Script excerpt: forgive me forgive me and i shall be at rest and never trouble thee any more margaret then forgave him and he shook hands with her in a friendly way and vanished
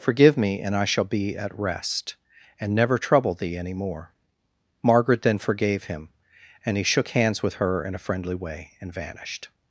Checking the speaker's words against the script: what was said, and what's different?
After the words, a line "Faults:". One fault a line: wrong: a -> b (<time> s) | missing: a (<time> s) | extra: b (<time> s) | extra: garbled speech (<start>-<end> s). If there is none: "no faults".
forgive me and i shall be at rest and never trouble thee any more margaret then forgave him and he shook hands with her in a friendly way and vanished
Faults:
missing: forgive me (0.6 s)